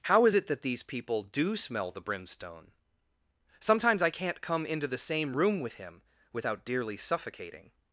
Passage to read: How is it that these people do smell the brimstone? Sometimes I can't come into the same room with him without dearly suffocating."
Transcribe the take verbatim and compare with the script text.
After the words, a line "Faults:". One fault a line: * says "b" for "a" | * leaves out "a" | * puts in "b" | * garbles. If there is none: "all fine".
How is it that these people do smell the brimstone? Sometimes I can't come into the same room with him without dearly suffocating."
Faults:
all fine